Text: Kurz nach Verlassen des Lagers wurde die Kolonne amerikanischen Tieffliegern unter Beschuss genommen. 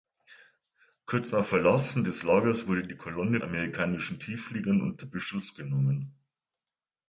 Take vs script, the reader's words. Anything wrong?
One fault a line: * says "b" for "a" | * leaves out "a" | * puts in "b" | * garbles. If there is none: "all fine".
all fine